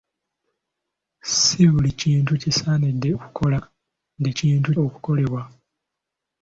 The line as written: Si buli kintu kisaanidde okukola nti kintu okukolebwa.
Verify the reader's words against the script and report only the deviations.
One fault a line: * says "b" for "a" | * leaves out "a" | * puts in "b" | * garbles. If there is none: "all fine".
all fine